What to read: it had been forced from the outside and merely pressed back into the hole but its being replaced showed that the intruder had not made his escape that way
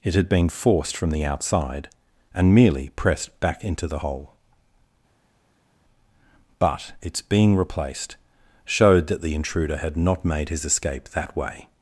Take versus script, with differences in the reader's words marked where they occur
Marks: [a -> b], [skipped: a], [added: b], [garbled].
it had been forced from the outside and merely pressed back into the hole but its being replaced showed that the intruder had not made his escape that way